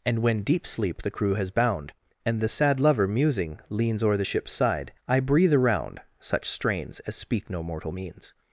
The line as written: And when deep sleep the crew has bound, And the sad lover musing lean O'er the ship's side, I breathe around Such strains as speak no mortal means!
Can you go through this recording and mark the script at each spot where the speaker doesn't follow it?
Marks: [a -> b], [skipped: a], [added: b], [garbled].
And when deep sleep the crew has bound, And the sad lover musing [lean -> leans] O'er the ship's side, I breathe around Such strains as speak no mortal means!